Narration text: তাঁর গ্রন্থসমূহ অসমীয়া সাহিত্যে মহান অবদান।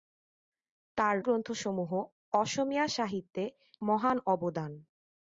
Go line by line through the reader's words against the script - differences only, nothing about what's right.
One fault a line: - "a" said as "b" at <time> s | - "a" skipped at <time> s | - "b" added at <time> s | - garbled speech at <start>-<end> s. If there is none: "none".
none